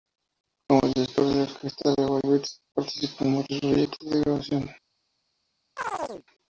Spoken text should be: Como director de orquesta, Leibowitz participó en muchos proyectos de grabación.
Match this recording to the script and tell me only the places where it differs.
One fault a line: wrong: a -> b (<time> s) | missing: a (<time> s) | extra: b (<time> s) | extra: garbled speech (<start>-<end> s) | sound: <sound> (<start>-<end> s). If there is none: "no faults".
sound: chirp (5.8-6.2 s)